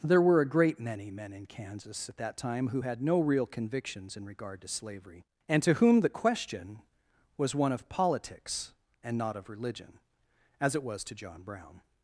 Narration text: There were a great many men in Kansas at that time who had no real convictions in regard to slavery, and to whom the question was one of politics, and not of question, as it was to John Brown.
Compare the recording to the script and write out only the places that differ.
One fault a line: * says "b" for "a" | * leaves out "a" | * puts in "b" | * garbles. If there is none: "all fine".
* says "religion" for "question"